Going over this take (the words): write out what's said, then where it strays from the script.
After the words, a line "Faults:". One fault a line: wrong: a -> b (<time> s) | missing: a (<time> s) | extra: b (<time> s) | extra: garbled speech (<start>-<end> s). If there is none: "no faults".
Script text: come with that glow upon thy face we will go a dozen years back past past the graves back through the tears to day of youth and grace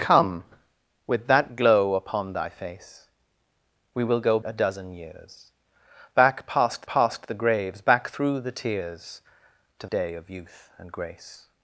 come with that glow upon thy face we will go a dozen years back past past the graves back through the tears to day of youth and grace
Faults:
no faults